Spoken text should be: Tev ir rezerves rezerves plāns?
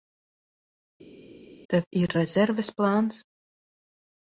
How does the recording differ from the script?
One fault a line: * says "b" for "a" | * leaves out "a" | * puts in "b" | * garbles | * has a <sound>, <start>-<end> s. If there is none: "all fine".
* leaves out "rezerves"